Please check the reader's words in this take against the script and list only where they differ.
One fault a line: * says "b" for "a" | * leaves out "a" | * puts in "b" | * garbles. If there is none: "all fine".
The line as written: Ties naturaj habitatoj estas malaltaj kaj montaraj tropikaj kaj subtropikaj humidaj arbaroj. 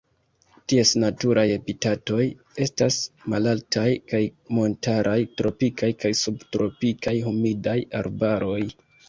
all fine